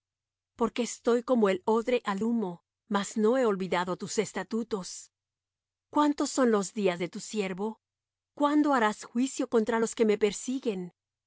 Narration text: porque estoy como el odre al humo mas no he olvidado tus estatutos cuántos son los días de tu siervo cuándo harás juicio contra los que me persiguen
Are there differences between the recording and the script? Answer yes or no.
no